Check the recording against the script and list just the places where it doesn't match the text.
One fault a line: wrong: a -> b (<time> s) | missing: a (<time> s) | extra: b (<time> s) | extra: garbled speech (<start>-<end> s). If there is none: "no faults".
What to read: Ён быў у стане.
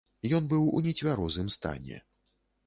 extra: нецвярозым (0.9 s)